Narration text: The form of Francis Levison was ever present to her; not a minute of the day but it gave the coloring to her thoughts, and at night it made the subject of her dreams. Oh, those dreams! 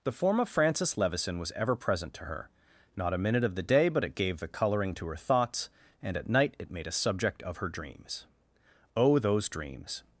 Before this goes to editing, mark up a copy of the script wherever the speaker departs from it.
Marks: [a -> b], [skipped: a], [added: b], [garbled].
The form of Francis Levison was ever present to her; not a minute of the day but it gave the coloring to her thoughts, and at night it made [the -> a] subject of her dreams. Oh, those dreams!